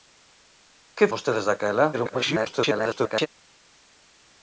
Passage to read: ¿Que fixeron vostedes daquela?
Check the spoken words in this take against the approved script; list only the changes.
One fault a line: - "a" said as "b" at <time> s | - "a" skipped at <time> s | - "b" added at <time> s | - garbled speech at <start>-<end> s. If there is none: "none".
- "fixeron" skipped at 1.1 s
- garbled speech at 1.9-3.3 s